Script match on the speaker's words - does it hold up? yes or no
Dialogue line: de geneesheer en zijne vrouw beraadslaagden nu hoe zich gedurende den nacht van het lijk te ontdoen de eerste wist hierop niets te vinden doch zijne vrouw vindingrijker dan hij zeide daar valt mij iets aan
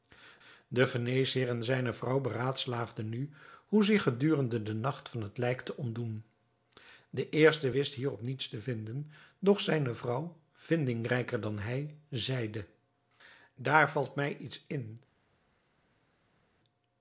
no